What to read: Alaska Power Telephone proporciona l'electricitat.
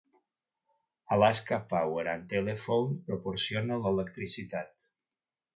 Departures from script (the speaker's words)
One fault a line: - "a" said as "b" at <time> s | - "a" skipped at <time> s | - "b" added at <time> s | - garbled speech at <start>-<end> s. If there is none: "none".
- "and" added at 2.1 s